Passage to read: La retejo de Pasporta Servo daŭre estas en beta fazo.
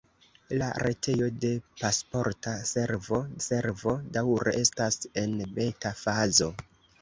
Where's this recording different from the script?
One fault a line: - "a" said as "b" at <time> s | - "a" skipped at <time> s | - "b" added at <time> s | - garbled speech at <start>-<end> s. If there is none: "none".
- "Servo" added at 3.4 s